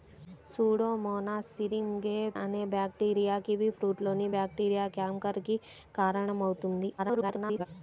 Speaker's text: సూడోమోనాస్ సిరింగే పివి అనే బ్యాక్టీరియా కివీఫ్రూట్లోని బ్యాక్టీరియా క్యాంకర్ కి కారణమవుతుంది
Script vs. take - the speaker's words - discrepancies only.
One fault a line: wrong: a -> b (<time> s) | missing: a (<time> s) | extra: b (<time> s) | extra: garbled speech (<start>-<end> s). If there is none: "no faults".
missing: పివి (2.1 s)
extra: garbled speech (7.0-7.7 s)